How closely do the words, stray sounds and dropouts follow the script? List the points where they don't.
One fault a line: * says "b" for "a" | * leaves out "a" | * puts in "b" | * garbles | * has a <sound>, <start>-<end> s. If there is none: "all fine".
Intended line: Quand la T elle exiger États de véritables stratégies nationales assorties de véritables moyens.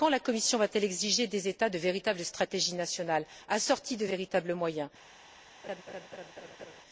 * puts in "Commission va"
* puts in "des"
* has a laugh, 5.6-6.8 s